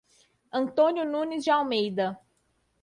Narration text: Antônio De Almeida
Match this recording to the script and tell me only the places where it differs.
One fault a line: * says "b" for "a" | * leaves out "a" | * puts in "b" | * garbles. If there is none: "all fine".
* puts in "Nunes"